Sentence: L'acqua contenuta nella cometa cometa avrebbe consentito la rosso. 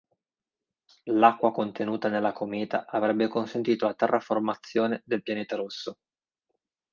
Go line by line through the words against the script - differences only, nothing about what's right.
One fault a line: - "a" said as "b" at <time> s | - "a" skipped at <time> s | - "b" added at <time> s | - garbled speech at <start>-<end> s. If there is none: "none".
- "cometa" skipped at 2.9 s
- "terraformazione del pianeta" added at 3.9 s